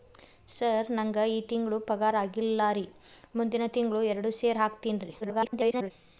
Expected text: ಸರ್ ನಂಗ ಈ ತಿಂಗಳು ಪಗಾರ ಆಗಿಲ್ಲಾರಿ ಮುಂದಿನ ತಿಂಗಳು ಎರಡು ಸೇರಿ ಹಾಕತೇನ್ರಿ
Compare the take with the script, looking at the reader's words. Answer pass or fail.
fail